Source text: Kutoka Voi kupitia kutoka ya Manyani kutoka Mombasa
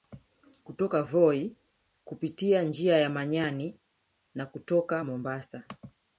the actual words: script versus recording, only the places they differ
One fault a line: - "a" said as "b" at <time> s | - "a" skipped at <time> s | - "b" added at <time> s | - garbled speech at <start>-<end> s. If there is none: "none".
- "kutoka" said as "njia" at 2.6 s
- "na" added at 4.3 s